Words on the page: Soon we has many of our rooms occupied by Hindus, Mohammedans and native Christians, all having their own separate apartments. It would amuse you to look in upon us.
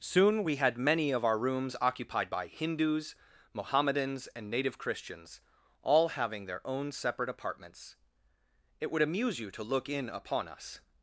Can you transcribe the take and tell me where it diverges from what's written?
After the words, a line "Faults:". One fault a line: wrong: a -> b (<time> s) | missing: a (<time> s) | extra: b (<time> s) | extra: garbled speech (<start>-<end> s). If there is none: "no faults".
Soon we had many of our rooms occupied by Hindus, Mohammedans and native Christians, all having their own separate apartments. It would amuse you to look in upon us.
Faults:
wrong: has -> had (0.5 s)